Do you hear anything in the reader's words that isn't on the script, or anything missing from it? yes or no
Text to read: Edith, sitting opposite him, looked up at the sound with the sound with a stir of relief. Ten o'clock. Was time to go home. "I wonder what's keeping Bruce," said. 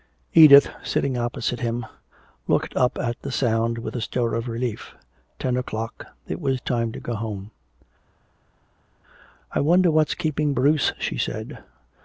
yes